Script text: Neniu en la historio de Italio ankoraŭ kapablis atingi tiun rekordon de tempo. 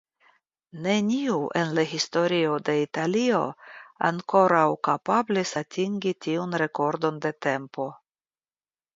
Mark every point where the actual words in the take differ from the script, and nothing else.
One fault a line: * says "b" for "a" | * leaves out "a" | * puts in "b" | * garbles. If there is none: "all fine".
all fine